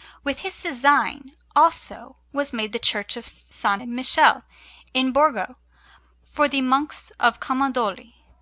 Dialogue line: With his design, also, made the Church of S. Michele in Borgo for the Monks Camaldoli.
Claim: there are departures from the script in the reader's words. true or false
true